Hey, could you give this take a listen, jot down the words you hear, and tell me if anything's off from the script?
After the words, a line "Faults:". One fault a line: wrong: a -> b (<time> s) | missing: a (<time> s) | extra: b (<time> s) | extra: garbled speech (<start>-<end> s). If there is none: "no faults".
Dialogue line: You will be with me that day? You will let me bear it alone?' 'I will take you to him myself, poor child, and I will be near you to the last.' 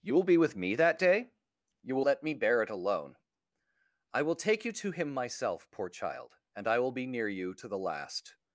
You will be with me that day? You will let me bear it alone?' 'I will take you to him myself, poor child, and I will be near you to the last.'
Faults:
no faults